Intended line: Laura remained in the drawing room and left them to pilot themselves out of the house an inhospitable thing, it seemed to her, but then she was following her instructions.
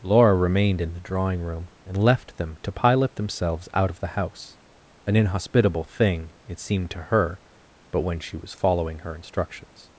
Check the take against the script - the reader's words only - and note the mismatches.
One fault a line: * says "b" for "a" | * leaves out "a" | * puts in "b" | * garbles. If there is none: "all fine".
* says "when" for "then"